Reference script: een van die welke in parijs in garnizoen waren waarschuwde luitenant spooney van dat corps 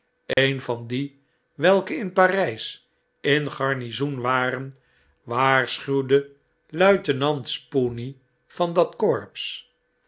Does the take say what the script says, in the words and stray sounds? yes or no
no